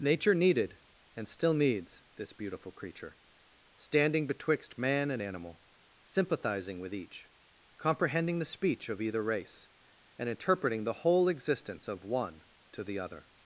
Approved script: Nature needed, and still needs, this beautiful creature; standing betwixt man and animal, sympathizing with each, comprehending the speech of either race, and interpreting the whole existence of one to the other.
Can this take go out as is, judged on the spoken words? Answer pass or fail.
pass